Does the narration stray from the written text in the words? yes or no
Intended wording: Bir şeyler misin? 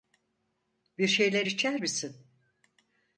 yes